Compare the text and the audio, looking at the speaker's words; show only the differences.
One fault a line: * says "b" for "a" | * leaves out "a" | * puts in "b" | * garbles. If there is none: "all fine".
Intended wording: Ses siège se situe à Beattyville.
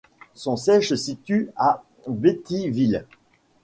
* says "Son" for "Ses"